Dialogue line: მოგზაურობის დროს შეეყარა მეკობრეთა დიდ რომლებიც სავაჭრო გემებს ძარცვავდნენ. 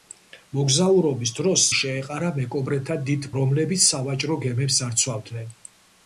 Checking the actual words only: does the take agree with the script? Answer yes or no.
yes